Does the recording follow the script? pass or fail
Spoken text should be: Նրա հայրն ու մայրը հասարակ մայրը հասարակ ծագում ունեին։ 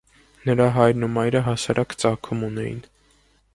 fail